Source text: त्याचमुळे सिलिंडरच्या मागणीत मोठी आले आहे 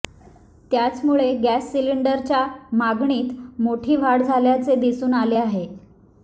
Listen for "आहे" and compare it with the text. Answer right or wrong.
right